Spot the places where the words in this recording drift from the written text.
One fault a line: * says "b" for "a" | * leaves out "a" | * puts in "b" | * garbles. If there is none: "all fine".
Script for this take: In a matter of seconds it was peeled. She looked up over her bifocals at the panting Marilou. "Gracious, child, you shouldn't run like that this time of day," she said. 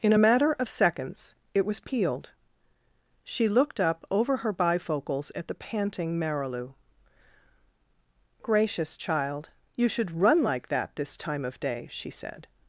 * says "should" for "shouldn't"